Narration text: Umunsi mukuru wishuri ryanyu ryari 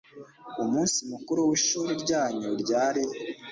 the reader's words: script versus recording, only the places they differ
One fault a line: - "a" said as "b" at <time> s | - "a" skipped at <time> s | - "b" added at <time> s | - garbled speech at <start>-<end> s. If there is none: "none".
none